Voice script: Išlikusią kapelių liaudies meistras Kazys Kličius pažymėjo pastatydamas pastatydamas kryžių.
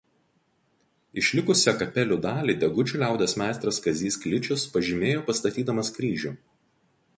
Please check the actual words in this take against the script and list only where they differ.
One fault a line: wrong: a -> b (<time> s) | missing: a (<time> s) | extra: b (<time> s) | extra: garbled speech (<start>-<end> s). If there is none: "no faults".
extra: dalį Degučių (2.3 s)
missing: pastatydamas (5.9 s)